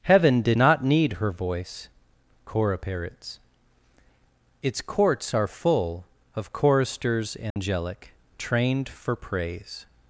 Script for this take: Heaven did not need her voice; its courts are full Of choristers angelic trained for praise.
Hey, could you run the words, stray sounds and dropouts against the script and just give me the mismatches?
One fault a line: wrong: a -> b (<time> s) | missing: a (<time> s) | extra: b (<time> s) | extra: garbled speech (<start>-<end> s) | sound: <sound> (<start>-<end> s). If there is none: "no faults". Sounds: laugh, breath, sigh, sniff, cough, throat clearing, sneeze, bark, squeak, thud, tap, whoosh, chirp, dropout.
extra: cora parrots (2.5 s)
sound: dropout (7.5-7.6 s)